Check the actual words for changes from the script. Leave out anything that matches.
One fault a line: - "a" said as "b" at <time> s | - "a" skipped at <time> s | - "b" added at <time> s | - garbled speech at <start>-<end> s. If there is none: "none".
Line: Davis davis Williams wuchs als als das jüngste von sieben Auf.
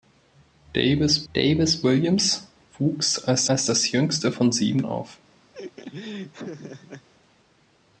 none